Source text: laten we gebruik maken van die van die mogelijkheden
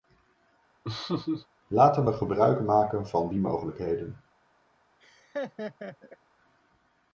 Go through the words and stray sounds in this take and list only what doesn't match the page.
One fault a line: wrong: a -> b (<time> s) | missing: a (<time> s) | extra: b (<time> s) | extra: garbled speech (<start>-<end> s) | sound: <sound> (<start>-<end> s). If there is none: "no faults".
sound: laugh (0.8-1.5 s)
missing: van die (3.4 s)
sound: laugh (5.0-6.2 s)